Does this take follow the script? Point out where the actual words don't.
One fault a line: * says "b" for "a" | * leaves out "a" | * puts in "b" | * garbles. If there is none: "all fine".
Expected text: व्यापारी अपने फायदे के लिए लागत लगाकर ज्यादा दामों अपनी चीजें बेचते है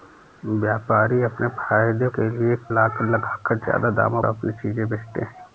all fine